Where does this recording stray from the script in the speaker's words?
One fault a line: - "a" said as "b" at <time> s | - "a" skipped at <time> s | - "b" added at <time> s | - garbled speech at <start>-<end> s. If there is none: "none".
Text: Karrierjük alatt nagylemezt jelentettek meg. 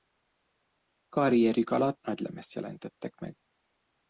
none